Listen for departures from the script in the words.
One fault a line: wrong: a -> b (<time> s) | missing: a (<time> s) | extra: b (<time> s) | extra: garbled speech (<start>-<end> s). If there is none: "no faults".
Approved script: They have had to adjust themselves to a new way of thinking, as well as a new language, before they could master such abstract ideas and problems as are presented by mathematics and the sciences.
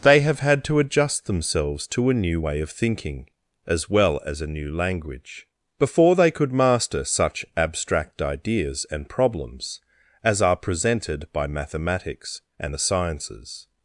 no faults